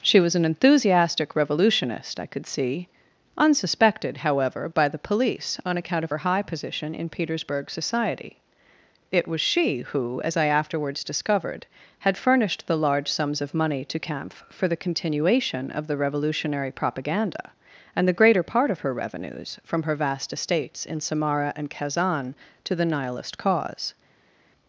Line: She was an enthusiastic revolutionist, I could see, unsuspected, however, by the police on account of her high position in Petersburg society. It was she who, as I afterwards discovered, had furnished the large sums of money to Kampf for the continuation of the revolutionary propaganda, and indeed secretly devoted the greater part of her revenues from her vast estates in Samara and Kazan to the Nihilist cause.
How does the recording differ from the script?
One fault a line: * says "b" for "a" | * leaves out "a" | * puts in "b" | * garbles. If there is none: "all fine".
* leaves out "indeed secretly devoted"